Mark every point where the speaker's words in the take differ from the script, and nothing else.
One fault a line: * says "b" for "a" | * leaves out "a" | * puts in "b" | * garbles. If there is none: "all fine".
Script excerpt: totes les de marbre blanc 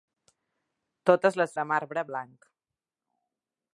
all fine